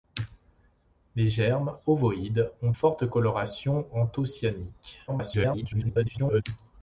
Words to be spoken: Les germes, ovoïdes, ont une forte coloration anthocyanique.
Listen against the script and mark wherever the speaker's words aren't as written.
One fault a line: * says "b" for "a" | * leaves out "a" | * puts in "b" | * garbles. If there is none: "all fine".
* leaves out "une"
* garbles